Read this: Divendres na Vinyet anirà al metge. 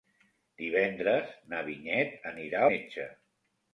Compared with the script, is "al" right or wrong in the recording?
wrong